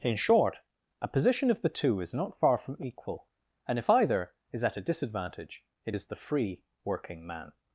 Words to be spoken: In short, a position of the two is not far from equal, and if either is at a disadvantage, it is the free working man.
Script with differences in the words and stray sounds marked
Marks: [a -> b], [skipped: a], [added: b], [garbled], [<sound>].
In short, a position of the two is not far from equal, and if either is at a disadvantage, it is the free working man.